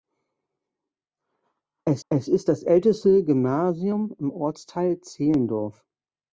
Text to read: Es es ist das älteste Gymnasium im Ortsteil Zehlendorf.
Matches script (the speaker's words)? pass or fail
pass